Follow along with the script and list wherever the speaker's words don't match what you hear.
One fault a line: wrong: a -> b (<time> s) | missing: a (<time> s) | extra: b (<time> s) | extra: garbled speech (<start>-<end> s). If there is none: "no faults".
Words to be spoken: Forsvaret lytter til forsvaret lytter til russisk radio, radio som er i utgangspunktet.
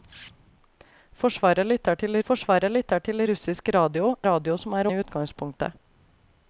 no faults